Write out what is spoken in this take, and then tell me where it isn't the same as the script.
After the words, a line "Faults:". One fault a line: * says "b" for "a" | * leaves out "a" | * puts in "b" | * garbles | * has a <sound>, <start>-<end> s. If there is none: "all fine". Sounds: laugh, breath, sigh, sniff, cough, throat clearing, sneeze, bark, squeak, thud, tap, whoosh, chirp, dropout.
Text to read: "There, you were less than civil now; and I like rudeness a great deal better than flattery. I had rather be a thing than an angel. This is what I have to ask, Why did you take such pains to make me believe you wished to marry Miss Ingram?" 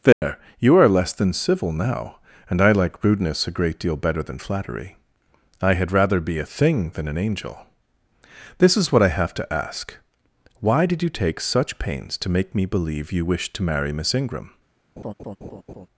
"There, you are less than civil now; and I like rudeness a great deal better than flattery. I had rather be a thing than an angel. This is what I have to ask, Why did you take such pains to make me believe you wished to marry Miss Ingram?"
Faults:
* has a dropout, 0.1-0.2 s
* says "are" for "were"
* has a laugh, 15.0-15.9 s